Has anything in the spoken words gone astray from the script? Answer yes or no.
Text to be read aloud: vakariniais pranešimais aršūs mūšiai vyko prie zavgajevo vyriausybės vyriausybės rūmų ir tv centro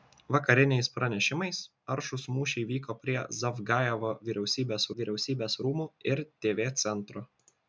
no